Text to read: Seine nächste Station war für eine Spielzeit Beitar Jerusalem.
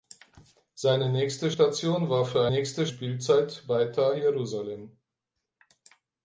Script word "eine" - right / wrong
wrong